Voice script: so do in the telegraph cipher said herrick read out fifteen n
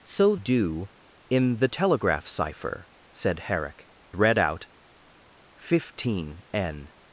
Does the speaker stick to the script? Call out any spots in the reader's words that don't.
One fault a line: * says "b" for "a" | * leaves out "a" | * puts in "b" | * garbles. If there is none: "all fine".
all fine